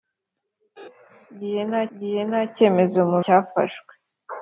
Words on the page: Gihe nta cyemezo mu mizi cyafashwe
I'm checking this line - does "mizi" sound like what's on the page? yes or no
no